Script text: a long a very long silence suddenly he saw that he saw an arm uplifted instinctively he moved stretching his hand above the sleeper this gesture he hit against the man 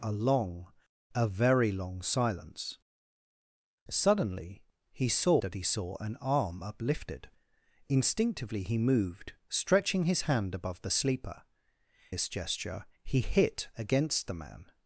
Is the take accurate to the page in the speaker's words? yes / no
yes